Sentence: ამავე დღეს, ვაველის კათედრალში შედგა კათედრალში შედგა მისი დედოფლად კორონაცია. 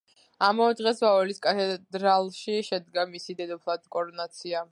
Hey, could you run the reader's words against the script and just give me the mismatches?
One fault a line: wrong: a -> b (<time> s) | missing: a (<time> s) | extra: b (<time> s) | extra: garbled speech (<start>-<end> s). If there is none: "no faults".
missing: კათედრალში შედგა (3.1 s)